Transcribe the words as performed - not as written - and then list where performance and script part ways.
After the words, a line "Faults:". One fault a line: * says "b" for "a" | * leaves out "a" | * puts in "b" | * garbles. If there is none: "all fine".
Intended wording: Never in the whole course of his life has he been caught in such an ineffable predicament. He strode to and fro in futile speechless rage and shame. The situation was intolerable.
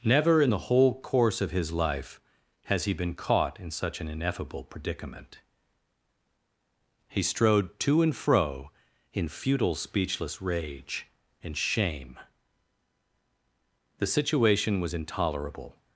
Never in the whole course of his life has he been caught in such an ineffable predicament. He strode to and fro in futile speechless rage and shame. The situation was intolerable.
Faults:
all fine